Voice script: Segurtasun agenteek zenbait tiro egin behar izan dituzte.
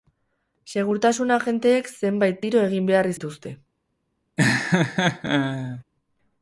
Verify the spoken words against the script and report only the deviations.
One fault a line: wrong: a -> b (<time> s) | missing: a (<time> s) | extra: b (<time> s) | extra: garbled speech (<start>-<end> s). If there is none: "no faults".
missing: izan (3.1 s)